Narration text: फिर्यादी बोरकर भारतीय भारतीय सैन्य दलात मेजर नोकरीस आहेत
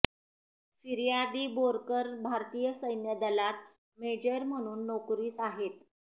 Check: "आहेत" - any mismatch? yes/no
no